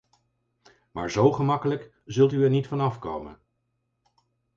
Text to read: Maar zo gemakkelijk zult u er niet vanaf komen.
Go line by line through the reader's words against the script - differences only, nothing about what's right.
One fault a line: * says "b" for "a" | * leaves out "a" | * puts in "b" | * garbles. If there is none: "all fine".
all fine